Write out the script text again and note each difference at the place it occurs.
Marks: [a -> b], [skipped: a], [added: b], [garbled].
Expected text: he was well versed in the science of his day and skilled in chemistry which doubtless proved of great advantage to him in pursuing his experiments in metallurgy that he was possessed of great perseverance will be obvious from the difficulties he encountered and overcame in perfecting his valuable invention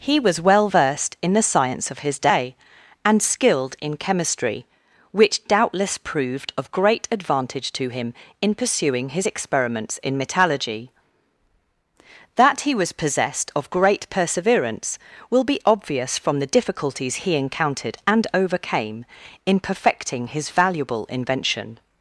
he was well versed in the science of his day and skilled in chemistry which doubtless proved of great advantage to him in pursuing his experiments in metallurgy that he was possessed of great perseverance will be obvious from the difficulties he encountered and overcame in perfecting his valuable invention